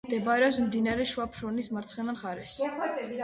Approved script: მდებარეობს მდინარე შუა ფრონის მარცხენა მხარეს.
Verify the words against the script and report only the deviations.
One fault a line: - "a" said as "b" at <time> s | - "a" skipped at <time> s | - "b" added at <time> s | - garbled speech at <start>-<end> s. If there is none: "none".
none